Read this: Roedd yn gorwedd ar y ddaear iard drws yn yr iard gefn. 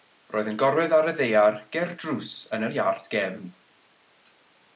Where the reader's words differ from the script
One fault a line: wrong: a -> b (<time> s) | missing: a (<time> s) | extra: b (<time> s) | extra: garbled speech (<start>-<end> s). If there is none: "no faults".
wrong: iard -> ger (1.8 s)